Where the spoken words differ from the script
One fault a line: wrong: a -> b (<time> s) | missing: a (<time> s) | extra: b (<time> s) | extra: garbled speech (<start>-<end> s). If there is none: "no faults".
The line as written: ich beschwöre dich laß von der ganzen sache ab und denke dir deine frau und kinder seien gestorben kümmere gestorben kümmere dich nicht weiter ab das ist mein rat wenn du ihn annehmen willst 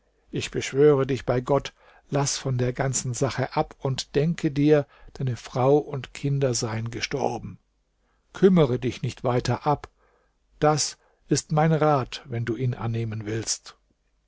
extra: bei gott (1.3 s)
missing: gestorben kümmere (8.8 s)